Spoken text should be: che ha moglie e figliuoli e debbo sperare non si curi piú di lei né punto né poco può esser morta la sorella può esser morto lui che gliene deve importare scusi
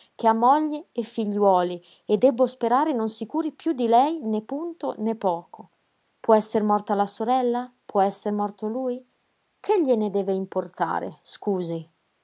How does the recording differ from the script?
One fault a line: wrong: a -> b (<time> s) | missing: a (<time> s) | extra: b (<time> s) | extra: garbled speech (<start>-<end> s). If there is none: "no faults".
no faults